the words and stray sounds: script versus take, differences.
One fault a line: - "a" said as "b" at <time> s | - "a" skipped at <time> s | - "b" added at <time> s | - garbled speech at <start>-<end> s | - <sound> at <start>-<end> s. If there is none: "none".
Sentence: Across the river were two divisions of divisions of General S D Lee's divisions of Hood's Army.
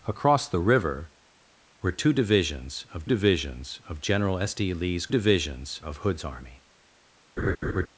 - laugh at 7.4-7.9 s